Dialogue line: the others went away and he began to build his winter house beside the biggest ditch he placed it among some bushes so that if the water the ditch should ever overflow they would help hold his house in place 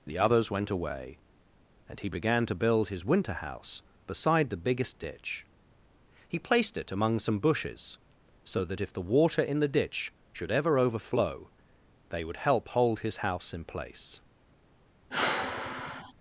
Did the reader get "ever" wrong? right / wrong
right